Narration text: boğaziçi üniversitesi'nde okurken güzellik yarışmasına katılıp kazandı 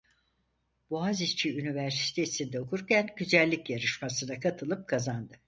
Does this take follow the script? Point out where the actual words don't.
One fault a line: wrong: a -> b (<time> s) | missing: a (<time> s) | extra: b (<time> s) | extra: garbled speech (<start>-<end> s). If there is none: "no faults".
no faults